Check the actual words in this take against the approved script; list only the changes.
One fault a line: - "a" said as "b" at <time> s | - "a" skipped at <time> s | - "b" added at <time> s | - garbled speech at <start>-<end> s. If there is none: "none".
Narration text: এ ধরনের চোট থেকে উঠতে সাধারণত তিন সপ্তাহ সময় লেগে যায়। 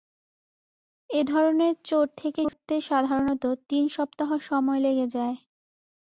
none